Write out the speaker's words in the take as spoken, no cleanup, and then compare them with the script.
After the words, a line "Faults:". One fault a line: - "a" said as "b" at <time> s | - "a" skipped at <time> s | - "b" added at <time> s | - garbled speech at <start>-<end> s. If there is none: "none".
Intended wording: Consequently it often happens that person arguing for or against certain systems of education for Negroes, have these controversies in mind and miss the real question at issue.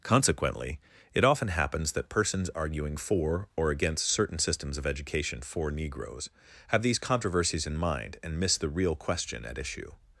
Consequently it often happens that persons arguing for or against certain systems of education for Negroes, have these controversies in mind and miss the real question at issue.
Faults:
- "person" said as "persons" at 2.1 s